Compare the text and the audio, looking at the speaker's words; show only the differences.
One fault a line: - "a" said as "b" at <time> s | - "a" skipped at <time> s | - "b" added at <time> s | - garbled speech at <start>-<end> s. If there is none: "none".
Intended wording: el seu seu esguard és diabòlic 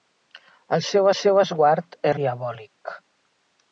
none